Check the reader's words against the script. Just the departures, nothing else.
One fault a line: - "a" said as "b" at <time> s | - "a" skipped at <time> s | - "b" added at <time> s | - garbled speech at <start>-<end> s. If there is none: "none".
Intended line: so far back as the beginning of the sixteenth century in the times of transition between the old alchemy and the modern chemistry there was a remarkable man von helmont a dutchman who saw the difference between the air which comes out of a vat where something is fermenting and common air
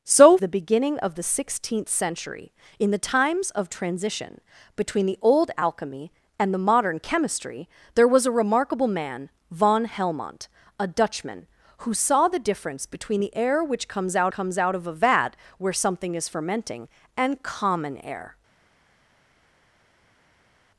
- "far back as" skipped at 0.3 s
- "comes out" added at 14.3 s